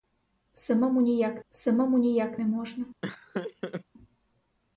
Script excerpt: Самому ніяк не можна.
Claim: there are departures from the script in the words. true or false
true